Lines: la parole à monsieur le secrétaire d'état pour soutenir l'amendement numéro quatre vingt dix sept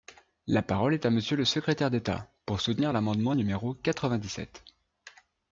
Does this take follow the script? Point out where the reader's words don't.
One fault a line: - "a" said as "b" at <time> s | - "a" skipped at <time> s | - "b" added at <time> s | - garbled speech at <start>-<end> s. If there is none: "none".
- "est" added at 0.9 s